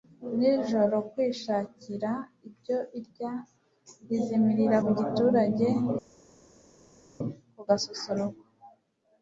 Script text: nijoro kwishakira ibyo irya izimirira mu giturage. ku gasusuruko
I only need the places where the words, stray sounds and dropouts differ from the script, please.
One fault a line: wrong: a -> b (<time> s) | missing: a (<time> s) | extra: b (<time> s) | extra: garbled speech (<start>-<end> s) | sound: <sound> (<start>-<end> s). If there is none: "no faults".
no faults